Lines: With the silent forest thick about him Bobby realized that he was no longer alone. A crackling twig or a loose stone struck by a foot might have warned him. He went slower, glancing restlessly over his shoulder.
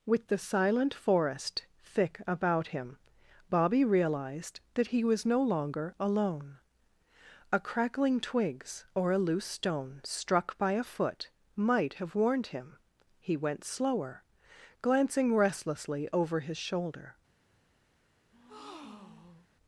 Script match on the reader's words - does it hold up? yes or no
no